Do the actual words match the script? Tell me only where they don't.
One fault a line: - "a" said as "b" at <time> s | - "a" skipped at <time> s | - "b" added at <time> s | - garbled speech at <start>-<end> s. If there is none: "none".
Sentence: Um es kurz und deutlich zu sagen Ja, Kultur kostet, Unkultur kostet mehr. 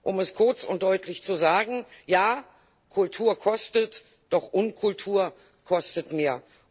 - "doch" added at 4.3 s